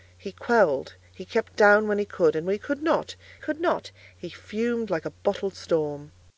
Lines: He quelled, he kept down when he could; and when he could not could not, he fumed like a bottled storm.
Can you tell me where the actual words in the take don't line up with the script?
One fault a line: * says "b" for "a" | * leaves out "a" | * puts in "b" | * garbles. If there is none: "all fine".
all fine